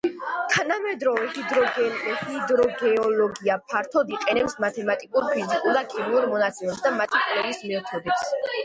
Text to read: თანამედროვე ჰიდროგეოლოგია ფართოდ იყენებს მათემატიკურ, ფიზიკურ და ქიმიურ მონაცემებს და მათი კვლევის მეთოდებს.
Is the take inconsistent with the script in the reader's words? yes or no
no